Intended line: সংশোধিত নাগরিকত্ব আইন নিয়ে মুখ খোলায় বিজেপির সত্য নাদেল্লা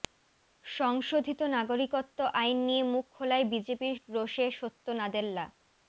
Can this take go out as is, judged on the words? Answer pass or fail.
fail